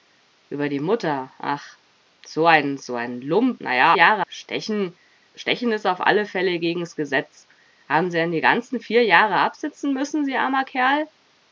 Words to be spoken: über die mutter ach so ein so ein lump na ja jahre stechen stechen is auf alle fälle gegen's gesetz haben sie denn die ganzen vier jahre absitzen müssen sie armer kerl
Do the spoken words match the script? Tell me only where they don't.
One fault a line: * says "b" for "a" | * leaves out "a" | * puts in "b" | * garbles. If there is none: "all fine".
all fine